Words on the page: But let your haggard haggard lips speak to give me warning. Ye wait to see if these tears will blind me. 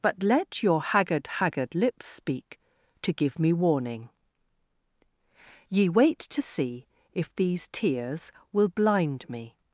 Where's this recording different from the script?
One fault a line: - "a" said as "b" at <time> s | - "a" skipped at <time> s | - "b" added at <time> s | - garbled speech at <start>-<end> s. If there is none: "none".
none